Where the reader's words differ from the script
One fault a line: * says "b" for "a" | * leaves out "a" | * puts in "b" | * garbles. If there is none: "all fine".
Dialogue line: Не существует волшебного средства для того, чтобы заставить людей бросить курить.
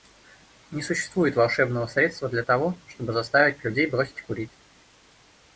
all fine